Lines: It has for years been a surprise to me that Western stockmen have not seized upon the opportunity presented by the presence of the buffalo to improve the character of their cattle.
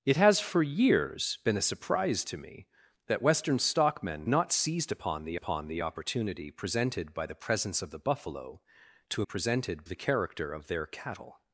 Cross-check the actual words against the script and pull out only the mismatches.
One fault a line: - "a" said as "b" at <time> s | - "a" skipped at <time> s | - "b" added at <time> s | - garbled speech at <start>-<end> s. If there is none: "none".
- "have" skipped at 4.3 s
- "upon the" added at 5.3 s
- "improve" said as "presented" at 9.2 s